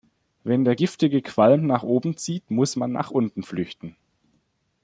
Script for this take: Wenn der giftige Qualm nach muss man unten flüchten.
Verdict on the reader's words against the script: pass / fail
fail